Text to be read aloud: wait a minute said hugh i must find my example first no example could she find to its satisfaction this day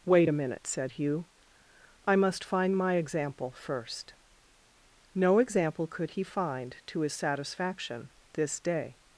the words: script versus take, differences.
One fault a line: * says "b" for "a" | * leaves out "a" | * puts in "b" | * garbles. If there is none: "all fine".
* says "he" for "she"
* says "his" for "its"